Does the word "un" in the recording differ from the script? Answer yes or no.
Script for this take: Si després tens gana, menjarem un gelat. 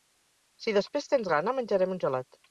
no